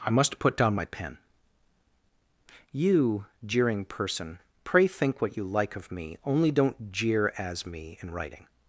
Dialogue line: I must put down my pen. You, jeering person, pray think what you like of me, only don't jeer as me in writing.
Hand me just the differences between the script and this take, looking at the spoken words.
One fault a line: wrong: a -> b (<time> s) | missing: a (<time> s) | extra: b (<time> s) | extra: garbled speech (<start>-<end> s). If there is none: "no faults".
no faults